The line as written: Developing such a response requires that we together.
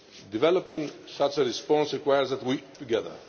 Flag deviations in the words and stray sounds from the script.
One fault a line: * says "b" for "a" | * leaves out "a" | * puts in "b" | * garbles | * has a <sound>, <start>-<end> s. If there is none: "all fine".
* has a dropout, 0.7-0.8 s